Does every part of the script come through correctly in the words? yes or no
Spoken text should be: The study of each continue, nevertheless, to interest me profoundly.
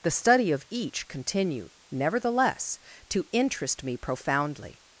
yes